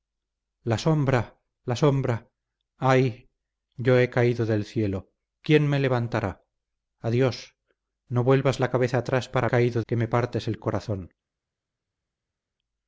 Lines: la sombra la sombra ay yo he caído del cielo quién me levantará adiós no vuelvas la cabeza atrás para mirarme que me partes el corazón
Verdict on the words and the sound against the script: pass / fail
fail